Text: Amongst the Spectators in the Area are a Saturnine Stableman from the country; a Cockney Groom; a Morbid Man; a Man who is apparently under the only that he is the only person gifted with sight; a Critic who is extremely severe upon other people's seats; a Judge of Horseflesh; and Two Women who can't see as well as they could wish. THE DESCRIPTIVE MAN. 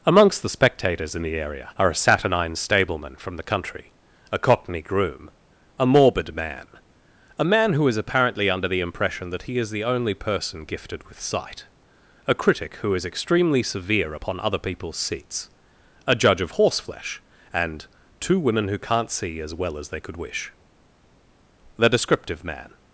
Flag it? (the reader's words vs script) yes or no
yes